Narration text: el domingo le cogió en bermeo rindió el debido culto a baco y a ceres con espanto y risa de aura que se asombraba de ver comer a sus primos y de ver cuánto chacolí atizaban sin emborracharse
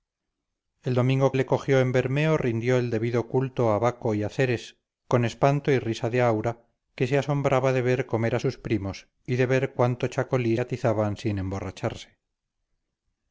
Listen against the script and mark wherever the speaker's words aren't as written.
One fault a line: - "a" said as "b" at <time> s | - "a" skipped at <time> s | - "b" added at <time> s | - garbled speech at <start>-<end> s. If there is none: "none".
none